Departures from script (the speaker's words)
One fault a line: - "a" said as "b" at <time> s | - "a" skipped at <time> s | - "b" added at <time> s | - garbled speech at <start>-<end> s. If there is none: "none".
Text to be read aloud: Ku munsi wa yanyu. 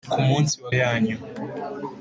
none